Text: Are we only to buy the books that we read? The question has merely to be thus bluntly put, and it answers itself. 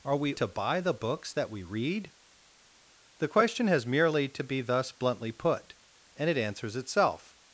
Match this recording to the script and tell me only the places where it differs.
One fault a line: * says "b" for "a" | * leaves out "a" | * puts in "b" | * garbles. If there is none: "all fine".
* leaves out "only"